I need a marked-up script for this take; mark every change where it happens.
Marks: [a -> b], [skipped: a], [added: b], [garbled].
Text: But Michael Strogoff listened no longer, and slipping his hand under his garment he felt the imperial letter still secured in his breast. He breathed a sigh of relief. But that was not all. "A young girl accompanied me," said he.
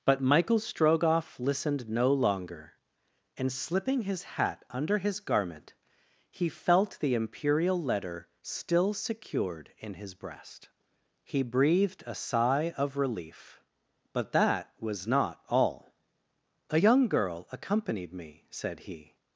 But Michael Strogoff listened no longer, and slipping his [hand -> hat] under his garment he felt the imperial letter still secured in his breast. He breathed a sigh of relief. But that was not all. "A young girl accompanied me," said he.